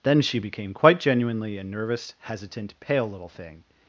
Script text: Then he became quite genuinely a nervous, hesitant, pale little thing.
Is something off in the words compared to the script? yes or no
yes